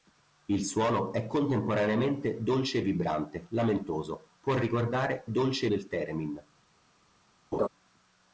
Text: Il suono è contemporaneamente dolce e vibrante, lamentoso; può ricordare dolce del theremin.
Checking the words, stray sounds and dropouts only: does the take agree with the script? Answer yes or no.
no